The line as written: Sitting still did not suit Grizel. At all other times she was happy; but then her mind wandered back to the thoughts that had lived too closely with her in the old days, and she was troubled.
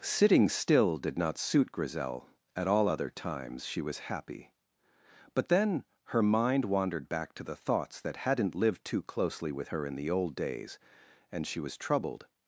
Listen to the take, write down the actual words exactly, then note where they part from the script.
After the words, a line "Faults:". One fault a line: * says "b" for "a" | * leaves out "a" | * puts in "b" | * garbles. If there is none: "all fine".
Sitting still did not suit Grizel. At all other times she was happy; but then her mind wandered back to the thoughts that hadn't lived too closely with her in the old days, and she was troubled.
Faults:
* says "hadn't" for "had"